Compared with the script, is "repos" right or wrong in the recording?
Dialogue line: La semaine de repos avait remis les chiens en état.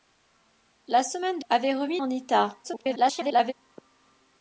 wrong